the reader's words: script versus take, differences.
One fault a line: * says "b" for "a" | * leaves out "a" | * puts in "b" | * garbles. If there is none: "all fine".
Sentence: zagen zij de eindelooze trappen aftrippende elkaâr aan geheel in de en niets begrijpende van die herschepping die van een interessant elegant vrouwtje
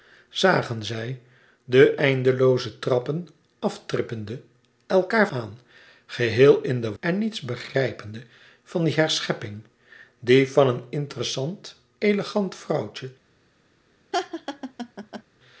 all fine